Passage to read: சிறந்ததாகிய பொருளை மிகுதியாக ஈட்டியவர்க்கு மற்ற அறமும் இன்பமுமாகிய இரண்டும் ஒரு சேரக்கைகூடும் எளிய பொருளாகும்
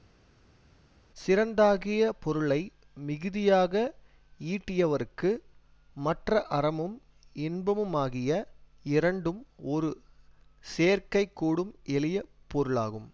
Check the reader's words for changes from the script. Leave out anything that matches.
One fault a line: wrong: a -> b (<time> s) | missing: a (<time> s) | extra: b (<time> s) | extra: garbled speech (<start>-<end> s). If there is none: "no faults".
no faults